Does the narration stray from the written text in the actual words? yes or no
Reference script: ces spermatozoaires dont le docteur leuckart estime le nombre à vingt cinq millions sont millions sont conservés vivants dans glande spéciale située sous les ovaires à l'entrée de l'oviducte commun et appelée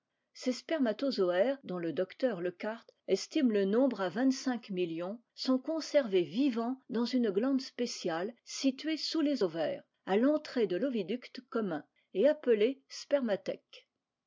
yes